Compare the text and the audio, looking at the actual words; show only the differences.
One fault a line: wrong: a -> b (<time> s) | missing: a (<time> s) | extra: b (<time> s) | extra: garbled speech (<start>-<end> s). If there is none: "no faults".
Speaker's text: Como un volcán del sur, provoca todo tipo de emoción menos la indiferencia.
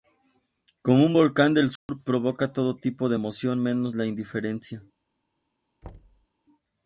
no faults